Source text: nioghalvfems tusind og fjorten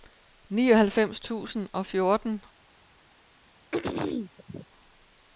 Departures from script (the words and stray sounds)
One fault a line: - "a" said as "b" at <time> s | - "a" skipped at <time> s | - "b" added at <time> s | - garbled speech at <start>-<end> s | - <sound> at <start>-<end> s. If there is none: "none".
- throat clearing at 3.7-4.7 s